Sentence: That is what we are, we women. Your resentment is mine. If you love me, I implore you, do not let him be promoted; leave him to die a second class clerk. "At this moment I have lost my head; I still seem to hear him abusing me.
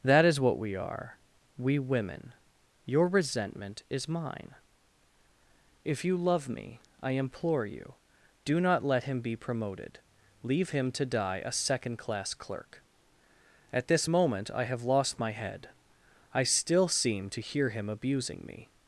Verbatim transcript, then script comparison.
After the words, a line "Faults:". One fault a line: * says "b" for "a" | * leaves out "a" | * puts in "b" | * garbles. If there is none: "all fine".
That is what we are, we women. Your resentment is mine. If you love me, I implore you, do not let him be promoted; leave him to die a second class clerk. "At this moment I have lost my head; I still seem to hear him abusing me.
Faults:
all fine